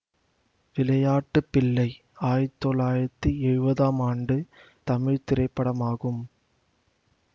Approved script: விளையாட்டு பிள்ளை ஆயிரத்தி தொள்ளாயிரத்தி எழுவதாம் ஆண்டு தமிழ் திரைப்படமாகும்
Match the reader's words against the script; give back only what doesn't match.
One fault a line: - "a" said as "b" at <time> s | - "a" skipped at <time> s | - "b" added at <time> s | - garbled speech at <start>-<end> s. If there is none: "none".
none